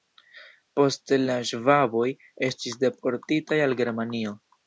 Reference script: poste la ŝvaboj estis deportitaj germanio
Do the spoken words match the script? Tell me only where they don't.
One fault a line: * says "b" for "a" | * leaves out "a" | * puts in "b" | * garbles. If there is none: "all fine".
* puts in "al"